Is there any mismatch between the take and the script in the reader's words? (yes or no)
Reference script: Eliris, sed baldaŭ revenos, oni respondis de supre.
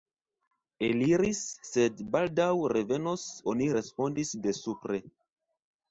no